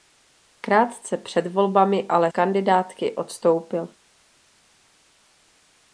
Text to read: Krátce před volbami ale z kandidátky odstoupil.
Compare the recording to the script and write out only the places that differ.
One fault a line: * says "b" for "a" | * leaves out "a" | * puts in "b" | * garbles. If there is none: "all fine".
* leaves out "z"